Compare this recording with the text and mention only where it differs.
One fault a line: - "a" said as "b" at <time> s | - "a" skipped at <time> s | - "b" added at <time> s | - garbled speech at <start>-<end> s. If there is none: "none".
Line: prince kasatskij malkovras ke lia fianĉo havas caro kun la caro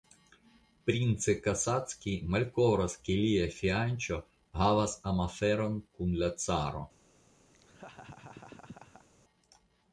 - "caro" said as "amaferon" at 5.1 s